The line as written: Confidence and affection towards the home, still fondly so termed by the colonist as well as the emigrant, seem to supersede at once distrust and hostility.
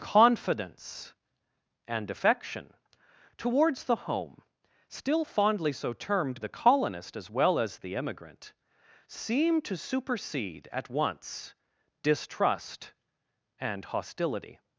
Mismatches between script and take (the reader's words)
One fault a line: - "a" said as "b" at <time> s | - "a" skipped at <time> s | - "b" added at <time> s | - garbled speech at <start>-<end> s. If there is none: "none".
- "by" skipped at 6.4 s